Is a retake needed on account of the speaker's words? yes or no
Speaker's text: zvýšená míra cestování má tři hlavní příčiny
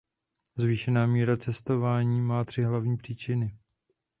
no